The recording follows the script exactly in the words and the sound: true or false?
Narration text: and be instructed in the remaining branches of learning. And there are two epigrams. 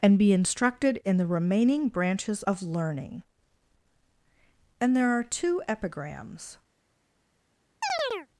false